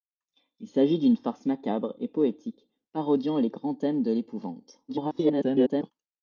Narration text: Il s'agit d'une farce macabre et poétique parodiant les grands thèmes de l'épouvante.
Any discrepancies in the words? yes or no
yes